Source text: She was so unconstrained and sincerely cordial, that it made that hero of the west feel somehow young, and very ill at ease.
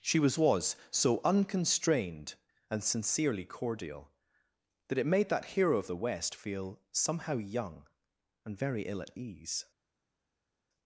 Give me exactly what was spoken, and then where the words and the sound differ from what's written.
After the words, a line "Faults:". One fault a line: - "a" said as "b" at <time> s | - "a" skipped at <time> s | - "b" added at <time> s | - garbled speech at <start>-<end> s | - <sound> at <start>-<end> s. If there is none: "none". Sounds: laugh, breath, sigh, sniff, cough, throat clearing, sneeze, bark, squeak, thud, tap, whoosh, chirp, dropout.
She was was so unconstrained and sincerely cordial, that it made that hero of the west feel somehow young, and very ill at ease.
Faults:
- "was" added at 0.3 s